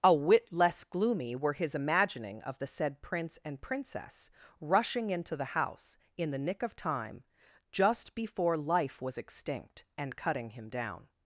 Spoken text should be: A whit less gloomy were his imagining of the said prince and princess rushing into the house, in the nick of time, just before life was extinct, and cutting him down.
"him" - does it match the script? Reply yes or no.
yes